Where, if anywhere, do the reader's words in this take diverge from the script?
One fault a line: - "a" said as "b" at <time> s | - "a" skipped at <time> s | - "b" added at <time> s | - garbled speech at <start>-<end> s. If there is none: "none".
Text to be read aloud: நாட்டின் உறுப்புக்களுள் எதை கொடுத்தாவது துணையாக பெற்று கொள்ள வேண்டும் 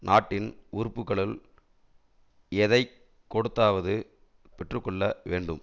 - "துணையாக" skipped at 3.9 s